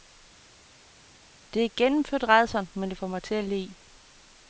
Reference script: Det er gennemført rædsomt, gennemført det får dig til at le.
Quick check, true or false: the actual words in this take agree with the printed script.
false